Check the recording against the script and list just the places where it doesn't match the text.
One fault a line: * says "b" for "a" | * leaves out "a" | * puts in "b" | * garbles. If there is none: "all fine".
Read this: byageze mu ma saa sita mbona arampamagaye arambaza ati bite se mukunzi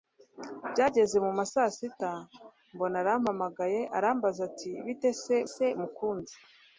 * puts in "se"